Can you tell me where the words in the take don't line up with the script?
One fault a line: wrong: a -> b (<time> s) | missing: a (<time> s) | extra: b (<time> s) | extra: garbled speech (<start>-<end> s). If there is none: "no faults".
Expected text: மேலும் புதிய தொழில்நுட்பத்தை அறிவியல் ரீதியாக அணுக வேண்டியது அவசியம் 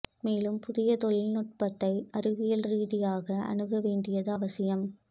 no faults